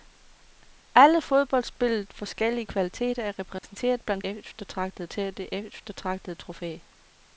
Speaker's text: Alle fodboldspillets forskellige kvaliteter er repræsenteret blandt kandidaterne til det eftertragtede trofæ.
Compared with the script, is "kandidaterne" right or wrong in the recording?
wrong